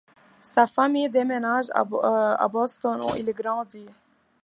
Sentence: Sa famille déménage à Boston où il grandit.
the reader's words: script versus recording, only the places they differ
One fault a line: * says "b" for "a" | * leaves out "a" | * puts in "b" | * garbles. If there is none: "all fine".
all fine